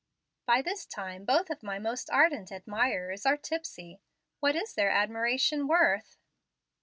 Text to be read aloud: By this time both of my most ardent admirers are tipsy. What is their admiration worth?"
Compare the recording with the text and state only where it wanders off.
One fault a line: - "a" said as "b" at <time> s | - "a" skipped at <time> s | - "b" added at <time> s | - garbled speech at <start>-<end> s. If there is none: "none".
none